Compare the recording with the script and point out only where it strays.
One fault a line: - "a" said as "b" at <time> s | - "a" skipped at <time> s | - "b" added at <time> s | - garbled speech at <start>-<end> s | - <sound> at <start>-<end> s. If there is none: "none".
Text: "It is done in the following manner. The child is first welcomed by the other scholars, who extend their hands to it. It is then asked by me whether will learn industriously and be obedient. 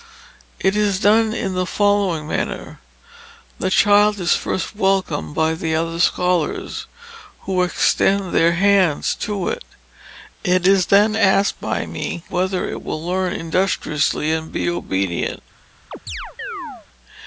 - "it" added at 12.7 s
- chirp at 15.9-16.9 s